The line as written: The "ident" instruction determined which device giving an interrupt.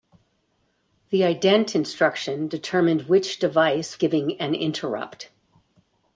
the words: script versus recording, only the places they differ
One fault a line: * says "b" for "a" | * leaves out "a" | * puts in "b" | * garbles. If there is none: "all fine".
all fine